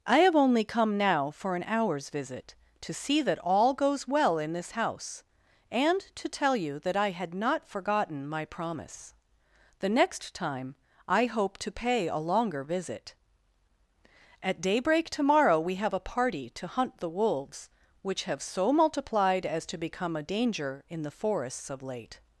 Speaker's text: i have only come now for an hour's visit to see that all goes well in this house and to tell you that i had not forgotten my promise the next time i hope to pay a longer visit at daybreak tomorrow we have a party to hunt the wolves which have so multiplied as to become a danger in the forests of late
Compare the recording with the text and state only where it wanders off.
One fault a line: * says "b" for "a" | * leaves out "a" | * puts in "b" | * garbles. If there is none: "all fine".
all fine